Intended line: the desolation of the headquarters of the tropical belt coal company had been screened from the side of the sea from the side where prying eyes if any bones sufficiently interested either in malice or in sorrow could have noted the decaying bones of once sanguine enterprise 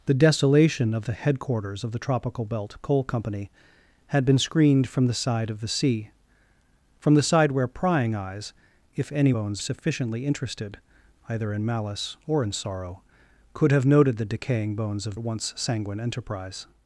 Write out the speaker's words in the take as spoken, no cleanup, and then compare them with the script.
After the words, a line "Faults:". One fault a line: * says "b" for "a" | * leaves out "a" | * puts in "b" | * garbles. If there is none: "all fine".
the desolation of the headquarters of the tropical belt coal company had been screened from the side of the sea from the side where prying eyes if any bones sufficiently interested either in malice or in sorrow could have noted the decaying bones of once sanguine enterprise
Faults:
all fine